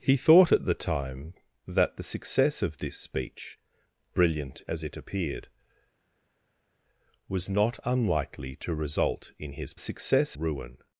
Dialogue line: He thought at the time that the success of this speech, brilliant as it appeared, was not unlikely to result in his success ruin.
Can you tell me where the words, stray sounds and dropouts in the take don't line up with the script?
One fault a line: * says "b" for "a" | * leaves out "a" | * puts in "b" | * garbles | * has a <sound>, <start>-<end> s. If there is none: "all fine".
all fine